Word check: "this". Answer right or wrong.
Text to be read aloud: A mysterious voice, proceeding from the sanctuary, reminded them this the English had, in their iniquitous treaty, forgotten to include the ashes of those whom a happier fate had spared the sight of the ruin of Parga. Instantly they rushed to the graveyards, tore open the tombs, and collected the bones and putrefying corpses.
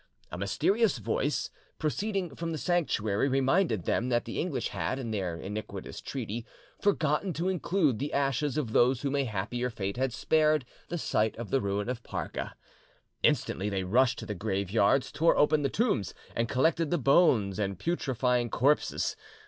wrong